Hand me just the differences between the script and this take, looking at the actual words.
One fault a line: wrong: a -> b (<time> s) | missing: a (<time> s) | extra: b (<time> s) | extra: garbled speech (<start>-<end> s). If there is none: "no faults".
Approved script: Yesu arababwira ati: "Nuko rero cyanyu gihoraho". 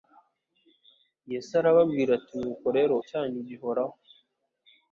no faults